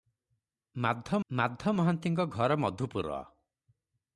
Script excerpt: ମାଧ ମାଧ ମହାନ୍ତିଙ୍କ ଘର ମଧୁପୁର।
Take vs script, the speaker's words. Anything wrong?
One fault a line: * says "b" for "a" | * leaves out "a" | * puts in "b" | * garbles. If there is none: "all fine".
all fine